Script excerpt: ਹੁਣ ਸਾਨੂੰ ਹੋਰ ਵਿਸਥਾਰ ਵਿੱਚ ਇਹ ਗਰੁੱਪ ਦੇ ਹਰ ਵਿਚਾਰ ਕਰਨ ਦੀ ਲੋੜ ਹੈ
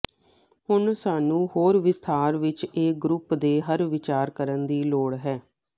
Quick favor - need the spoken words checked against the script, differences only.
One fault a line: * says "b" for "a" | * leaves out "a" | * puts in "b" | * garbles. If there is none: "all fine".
all fine